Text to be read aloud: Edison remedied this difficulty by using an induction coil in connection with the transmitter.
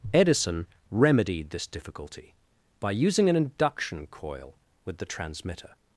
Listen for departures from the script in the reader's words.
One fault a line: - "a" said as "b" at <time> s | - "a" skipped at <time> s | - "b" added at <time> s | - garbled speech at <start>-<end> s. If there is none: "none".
- "in connection" skipped at 4.5 s